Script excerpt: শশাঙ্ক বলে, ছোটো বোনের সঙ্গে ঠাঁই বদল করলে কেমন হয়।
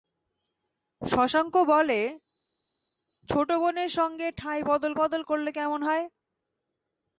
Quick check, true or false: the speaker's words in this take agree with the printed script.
false